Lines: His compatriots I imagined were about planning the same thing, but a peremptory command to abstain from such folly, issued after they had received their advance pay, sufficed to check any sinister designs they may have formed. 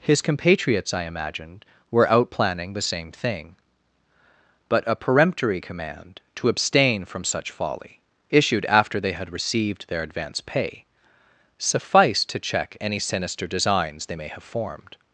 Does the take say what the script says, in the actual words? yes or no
no